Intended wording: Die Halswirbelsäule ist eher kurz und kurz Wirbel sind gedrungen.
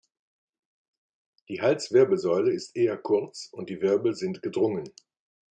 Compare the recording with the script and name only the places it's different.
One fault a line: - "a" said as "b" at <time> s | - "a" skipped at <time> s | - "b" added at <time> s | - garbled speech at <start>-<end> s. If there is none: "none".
- "kurz" said as "die" at 3.7 s